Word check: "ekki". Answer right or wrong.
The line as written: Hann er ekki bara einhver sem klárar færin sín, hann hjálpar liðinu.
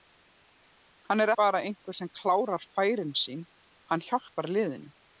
wrong